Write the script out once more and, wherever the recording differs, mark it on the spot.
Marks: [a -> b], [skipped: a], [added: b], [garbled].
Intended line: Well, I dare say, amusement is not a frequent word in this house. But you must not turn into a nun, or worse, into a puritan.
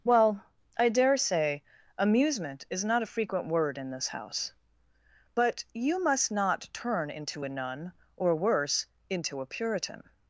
Well, I dare say, amusement is not a frequent word in this house. But you must not turn into a nun, or worse, into a puritan.